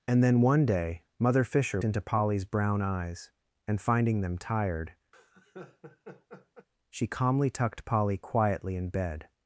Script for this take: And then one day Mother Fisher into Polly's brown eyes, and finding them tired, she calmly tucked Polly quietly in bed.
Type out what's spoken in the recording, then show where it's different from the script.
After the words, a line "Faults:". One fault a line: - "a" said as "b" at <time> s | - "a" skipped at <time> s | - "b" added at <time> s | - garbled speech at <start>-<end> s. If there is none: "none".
And then one day Mother Fisher into Polly's brown eyes, and finding them tired, she calmly tucked Polly quietly in bed.
Faults:
none